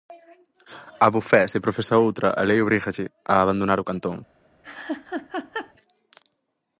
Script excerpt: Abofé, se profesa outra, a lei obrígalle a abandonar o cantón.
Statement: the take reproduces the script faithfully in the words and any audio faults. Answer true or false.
false